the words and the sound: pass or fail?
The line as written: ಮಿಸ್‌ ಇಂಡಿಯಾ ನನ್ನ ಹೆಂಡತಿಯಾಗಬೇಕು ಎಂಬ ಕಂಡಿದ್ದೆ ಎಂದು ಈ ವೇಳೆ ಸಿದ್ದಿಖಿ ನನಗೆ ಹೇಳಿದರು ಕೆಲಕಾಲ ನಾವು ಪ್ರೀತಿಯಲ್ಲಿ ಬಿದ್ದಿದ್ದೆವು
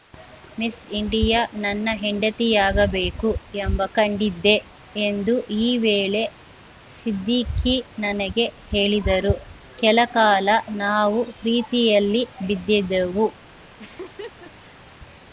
fail